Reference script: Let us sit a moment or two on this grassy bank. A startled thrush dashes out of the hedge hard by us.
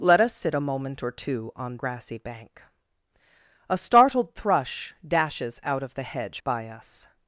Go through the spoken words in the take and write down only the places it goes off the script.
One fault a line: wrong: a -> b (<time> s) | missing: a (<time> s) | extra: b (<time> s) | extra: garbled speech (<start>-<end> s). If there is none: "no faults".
missing: this (1.8 s)
missing: hard (6.4 s)